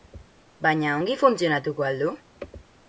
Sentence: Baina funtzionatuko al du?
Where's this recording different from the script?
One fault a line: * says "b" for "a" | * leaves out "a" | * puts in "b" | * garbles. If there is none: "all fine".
* puts in "ongi"